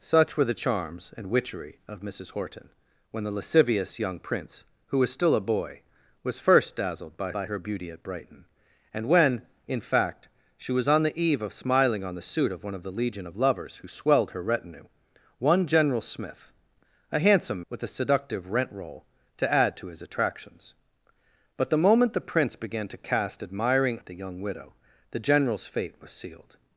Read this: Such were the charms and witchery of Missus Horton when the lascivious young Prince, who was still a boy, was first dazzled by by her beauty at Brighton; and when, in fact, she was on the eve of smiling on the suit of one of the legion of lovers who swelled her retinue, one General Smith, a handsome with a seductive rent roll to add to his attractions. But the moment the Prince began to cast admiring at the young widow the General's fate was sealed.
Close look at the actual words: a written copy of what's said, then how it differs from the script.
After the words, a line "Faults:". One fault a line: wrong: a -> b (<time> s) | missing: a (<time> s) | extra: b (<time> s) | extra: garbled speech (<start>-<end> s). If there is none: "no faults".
Such were the charms and witchery of Missus Horton when the lascivious young Prince, who was still a boy, was first dazzled by by her beauty at Brighton; and when, in fact, she was on the eve of smiling on the suit of one of the legion of lovers who swelled her retinue, one General Smith, a handsome with a seductive rent roll to add to his attractions. But the moment the Prince began to cast admiring at the young widow the General's fate was sealed.
Faults:
no faults